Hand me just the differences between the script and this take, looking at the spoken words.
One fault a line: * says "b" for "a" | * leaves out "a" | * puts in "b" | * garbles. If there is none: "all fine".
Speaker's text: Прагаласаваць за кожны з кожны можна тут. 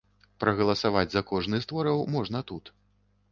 * says "твораў" for "кожны"